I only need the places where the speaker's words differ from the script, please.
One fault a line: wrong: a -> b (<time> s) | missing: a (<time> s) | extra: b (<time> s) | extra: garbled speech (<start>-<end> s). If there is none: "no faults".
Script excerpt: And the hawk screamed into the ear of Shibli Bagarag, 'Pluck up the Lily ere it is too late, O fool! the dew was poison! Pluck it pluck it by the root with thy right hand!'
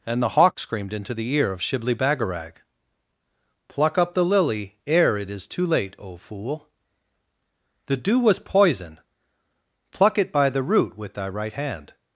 missing: pluck it (10.3 s)